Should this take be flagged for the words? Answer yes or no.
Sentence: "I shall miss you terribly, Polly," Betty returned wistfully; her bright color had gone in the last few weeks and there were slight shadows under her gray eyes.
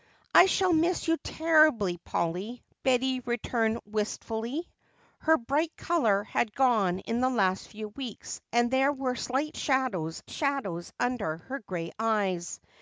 yes